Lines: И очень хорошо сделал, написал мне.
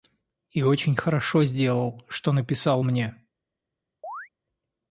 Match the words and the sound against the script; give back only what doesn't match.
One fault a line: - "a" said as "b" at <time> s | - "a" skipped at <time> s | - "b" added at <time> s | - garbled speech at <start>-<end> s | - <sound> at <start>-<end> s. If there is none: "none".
- "что" added at 2.1 s
- chirp at 4.0-4.3 s